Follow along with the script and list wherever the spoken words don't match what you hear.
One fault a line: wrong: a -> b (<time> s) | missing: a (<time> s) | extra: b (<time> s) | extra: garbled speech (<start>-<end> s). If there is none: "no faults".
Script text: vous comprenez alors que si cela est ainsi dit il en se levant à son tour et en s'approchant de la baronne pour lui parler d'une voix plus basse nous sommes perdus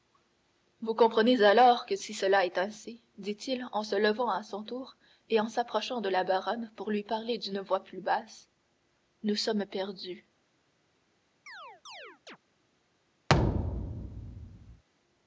no faults